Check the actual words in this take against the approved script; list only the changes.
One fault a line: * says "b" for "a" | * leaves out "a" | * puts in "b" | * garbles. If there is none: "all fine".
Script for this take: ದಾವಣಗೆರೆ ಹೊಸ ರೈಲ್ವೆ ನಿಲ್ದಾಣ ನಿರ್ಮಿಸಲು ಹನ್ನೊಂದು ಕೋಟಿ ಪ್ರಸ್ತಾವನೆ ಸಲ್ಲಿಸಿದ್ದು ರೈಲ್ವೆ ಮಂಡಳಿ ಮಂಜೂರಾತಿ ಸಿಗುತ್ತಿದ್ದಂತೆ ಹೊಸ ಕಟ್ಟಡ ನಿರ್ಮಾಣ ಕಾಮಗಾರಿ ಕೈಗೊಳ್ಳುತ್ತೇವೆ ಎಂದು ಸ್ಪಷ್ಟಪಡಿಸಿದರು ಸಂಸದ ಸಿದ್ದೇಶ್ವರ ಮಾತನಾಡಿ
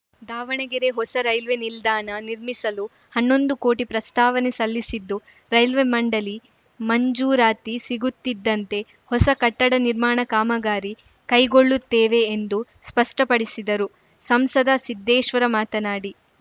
all fine